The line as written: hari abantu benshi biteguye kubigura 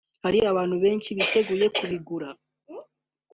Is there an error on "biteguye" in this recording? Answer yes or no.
no